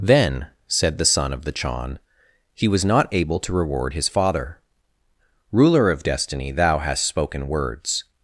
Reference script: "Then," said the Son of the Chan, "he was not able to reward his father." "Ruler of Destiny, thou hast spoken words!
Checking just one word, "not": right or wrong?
right